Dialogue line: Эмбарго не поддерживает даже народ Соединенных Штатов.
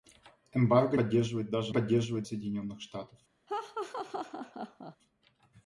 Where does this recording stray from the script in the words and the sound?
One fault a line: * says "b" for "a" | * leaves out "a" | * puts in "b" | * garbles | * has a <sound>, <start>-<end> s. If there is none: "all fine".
* leaves out "не"
* says "поддерживает" for "народ"
* has a laugh, 3.5-5.0 s